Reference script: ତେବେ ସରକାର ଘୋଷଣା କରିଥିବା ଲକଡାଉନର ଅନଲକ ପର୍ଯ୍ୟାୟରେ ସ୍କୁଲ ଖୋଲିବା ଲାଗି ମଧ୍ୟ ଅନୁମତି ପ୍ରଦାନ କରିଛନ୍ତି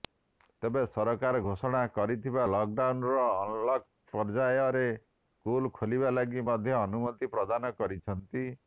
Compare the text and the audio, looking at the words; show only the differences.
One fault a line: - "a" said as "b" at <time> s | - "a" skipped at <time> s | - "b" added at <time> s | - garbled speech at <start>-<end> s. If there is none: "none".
none